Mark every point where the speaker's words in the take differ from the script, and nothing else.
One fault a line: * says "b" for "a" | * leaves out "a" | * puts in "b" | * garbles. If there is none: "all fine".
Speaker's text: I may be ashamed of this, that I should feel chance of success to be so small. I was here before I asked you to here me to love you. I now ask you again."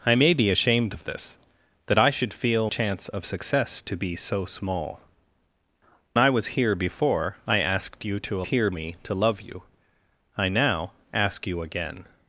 all fine